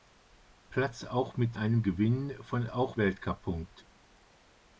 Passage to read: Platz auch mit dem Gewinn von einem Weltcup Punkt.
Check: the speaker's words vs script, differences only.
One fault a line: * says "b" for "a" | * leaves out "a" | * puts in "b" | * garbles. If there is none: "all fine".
* says "einem" for "dem"
* says "auch" for "einem"